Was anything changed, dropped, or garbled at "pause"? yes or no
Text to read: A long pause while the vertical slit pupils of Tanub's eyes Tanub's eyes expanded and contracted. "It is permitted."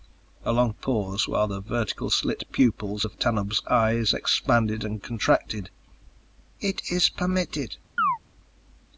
no